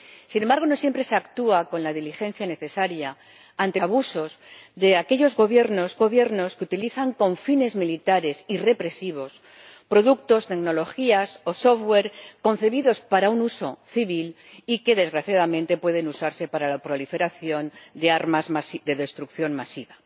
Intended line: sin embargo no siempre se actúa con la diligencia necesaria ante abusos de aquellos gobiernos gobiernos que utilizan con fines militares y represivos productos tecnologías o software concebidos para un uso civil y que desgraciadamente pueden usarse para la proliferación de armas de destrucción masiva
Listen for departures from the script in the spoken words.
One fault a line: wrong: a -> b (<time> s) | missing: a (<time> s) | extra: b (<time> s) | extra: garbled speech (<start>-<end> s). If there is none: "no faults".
no faults